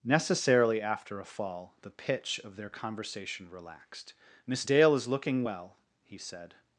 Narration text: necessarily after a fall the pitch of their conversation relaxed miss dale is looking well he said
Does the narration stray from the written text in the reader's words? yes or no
no